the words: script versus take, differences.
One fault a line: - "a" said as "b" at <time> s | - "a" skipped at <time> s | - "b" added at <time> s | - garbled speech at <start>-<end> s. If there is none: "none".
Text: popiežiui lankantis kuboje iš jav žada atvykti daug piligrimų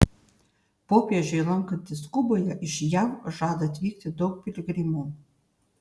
none